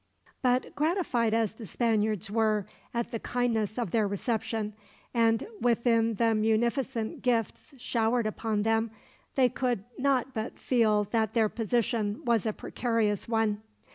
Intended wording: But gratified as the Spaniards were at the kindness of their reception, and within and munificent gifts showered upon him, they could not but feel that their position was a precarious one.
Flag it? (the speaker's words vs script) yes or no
yes